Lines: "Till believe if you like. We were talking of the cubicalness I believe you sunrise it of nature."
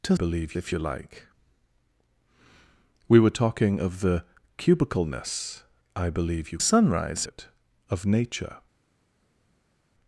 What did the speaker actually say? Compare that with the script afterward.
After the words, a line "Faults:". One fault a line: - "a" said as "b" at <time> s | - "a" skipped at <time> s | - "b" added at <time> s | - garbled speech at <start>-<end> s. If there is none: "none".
"Till believe if you like. We were talking of the cubicalness I believe you sunrise it of nature."
Faults:
none